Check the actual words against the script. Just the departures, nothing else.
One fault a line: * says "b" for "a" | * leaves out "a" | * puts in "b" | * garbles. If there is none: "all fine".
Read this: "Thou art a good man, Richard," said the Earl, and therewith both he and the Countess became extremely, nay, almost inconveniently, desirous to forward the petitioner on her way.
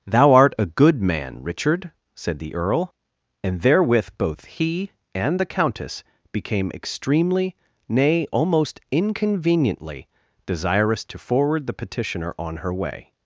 all fine